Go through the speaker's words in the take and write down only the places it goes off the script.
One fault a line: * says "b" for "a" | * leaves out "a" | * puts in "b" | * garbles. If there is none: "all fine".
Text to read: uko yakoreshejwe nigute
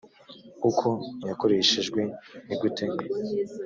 all fine